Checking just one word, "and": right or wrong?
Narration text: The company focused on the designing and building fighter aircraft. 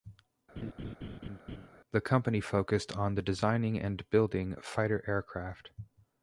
right